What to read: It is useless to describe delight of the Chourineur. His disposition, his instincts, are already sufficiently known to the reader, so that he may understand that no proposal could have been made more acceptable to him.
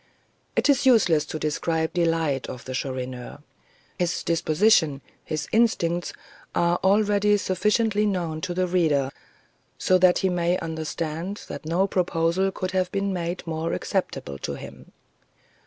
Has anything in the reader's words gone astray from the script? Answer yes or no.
no